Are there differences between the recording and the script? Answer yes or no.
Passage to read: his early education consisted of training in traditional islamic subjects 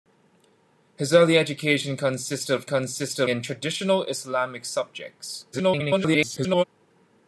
yes